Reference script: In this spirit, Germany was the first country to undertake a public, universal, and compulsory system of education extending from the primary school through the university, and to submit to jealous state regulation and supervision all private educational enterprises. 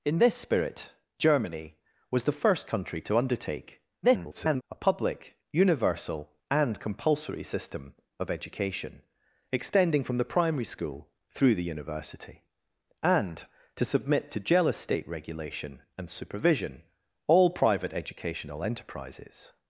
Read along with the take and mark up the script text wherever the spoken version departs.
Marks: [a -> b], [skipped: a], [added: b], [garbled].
In this spirit, Germany was the first country to undertake [garbled] a public, universal, and compulsory system of education extending from the primary school through the university, and to submit to jealous state regulation and supervision all private educational enterprises.